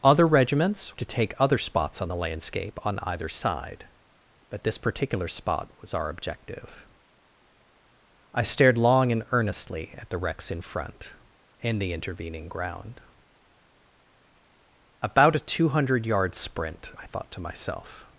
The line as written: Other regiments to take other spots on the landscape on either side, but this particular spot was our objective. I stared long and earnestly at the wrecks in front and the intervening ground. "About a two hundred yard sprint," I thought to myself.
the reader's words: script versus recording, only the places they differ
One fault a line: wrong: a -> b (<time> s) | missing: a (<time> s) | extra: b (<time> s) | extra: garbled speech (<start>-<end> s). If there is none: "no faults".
no faults